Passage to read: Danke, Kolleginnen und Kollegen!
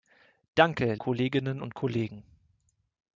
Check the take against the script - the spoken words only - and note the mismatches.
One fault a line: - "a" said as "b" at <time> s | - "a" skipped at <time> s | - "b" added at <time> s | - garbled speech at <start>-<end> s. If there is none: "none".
none